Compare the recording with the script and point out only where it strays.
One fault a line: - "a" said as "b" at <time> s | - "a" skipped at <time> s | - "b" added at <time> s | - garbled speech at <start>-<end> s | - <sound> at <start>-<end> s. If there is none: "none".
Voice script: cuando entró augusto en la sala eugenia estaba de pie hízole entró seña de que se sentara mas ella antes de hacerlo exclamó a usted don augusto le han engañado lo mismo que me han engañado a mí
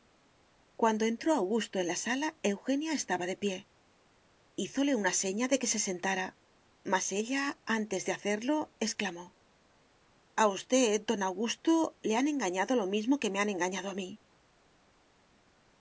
- "entró" said as "una" at 5.0 s